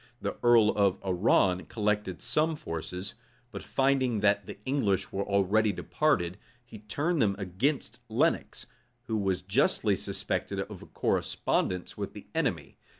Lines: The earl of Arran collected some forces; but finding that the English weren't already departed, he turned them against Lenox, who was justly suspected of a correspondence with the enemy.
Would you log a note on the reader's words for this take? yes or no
yes